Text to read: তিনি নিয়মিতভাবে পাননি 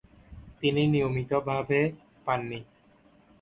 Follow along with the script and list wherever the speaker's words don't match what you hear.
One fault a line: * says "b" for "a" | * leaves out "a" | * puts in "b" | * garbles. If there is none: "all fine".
all fine